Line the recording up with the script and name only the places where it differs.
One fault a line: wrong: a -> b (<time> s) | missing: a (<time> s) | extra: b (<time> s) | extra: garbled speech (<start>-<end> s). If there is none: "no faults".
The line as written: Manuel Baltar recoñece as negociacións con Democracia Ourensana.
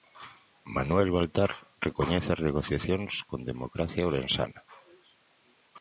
no faults